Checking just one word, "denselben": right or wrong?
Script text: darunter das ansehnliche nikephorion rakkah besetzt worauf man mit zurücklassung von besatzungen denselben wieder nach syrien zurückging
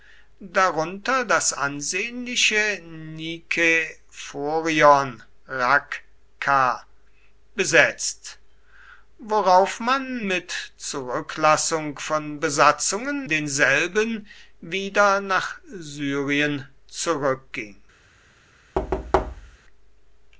right